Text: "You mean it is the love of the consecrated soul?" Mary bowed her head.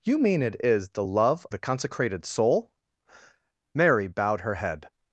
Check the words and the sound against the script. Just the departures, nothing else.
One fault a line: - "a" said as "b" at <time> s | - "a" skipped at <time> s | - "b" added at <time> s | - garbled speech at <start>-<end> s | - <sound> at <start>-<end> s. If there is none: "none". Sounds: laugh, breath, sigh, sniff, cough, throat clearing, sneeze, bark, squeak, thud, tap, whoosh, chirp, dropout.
- "of" skipped at 1.5 s